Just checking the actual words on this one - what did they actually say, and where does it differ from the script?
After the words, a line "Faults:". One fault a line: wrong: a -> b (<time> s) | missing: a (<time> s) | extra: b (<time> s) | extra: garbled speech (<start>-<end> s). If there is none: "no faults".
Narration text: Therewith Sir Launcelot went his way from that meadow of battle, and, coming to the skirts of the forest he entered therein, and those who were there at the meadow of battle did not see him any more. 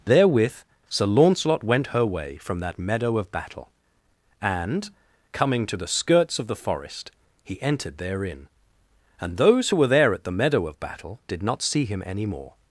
Therewith Sir Launcelot went her way from that meadow of battle, and, coming to the skirts of the forest he entered therein, and those who were there at the meadow of battle did not see him any more.
Faults:
wrong: his -> her (1.9 s)